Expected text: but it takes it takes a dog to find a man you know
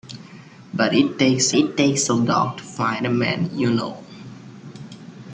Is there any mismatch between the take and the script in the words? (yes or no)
no